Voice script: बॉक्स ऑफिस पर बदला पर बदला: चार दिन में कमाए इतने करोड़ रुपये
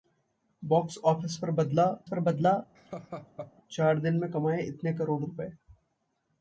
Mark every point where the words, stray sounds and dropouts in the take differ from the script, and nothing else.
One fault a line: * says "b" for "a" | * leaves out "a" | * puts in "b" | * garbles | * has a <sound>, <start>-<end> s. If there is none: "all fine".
* has a laugh, 2.8-3.5 s